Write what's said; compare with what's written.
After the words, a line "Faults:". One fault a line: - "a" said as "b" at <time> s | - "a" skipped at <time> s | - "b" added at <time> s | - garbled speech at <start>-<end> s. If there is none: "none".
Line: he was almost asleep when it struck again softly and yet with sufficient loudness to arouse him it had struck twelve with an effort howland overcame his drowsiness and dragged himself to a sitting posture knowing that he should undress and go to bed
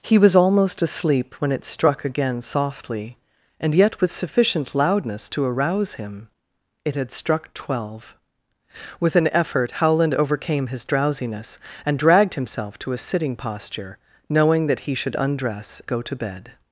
he was almost asleep when it struck again softly and yet with sufficient loudness to arouse him it had struck twelve with an effort howland overcame his drowsiness and dragged himself to a sitting posture knowing that he should undress go to bed
Faults:
- "and" skipped at 15.8 s